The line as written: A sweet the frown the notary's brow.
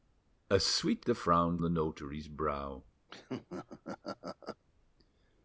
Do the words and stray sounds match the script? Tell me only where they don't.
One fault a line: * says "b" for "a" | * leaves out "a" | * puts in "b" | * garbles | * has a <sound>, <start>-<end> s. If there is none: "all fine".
* has a laugh, 3.1-4.6 s